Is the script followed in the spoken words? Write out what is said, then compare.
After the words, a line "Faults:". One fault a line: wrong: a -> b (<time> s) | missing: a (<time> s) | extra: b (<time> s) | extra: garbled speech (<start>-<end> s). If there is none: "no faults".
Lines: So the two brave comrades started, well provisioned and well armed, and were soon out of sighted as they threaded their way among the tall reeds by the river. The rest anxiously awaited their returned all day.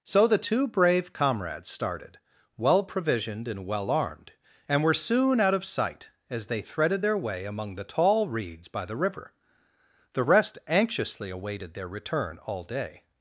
So the two brave comrades started, well provisioned and well armed, and were soon out of sight as they threaded their way among the tall reeds by the river. The rest anxiously awaited their return all day.
Faults:
wrong: sighted -> sight (5.7 s)
wrong: returned -> return (11.9 s)